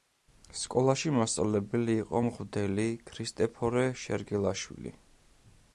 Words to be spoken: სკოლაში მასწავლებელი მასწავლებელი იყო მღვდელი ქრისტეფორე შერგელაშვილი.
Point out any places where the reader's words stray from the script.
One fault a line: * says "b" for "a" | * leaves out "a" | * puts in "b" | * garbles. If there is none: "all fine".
* leaves out "მასწავლებელი"